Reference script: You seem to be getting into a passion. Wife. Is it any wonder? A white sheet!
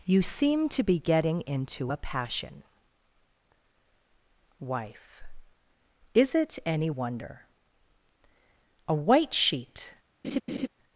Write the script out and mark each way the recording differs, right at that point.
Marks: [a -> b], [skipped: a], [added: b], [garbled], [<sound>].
You seem to be getting into a passion. Wife. Is it any wonder? A white sheet! [laugh]